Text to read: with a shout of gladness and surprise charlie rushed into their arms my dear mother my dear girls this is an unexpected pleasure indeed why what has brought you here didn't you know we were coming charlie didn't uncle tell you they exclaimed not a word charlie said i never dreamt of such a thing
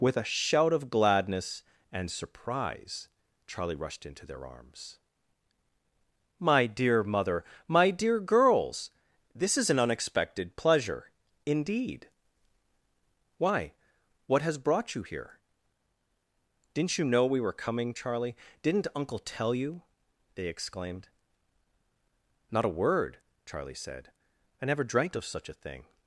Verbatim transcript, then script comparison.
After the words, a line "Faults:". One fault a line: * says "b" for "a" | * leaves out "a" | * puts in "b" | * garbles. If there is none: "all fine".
with a shout of gladness and surprise charlie rushed into their arms my dear mother my dear girls this is an unexpected pleasure indeed why what has brought you here didn't you know we were coming charlie didn't uncle tell you they exclaimed not a word charlie said i never dreamt of such a thing
Faults:
all fine